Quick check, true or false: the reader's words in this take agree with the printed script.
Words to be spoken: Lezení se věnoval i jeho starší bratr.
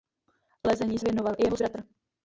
false